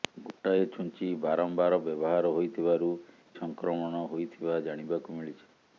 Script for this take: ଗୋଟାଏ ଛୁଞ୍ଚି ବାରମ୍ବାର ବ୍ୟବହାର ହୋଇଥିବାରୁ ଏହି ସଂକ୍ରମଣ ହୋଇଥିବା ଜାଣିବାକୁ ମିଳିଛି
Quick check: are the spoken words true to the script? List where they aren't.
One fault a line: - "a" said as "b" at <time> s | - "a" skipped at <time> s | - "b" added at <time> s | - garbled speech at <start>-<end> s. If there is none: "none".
- "ଏହି" skipped at 2.9 s